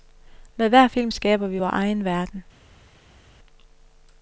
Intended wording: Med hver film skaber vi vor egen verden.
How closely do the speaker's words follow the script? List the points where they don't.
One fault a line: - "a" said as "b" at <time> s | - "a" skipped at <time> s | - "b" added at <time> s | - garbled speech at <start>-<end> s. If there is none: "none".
none